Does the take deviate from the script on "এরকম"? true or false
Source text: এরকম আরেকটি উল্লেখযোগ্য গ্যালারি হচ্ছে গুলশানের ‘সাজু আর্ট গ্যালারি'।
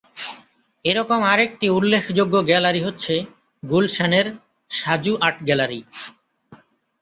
false